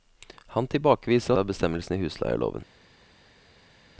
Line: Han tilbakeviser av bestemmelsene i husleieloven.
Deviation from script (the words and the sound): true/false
false